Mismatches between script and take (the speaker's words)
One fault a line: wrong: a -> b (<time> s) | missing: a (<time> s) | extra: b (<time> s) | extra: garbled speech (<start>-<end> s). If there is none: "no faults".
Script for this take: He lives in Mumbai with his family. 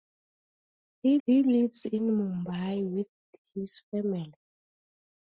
extra: he (1.3 s)